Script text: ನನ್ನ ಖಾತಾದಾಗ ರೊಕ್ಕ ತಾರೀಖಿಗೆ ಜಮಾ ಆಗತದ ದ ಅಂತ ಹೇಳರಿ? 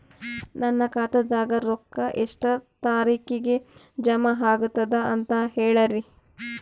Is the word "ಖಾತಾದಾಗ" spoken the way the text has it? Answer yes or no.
yes